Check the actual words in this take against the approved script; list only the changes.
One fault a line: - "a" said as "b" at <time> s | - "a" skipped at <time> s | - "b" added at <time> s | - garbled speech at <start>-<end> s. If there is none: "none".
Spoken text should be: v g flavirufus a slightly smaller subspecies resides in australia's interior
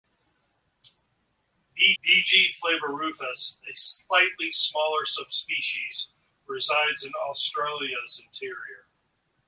- "v" added at 2.0 s